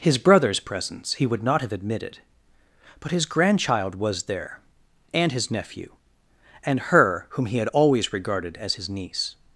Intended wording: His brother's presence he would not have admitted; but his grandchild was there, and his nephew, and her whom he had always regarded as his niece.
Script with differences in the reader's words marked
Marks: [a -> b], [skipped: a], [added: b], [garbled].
His brother's presence he would not have admitted; but his grandchild was there, and his nephew, and her whom he had always regarded as his niece.